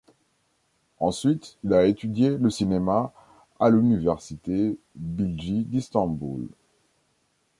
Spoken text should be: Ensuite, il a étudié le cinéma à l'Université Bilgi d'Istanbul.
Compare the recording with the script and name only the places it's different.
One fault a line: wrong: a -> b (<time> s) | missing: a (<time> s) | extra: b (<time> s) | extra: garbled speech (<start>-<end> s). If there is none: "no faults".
no faults